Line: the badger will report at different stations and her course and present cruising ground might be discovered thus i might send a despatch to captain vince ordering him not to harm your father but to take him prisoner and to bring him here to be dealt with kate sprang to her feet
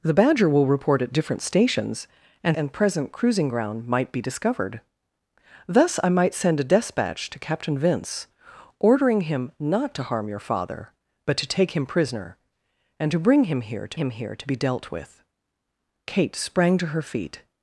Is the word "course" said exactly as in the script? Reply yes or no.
no